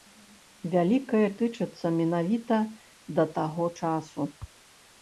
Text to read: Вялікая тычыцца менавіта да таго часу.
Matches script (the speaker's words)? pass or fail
pass